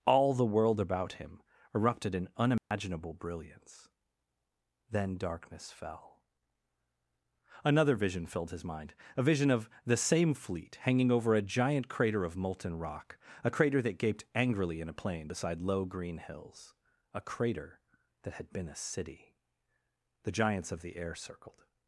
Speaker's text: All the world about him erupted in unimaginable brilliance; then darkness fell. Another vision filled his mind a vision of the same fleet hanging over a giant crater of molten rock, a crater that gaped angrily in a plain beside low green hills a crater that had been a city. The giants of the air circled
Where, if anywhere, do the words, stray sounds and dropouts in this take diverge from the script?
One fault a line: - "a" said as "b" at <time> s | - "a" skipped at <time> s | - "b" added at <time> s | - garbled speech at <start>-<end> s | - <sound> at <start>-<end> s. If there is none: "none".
- dropout at 2.6-2.7 s